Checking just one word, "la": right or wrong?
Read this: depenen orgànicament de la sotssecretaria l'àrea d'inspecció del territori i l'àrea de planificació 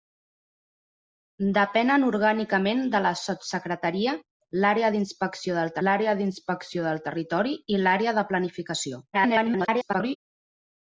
right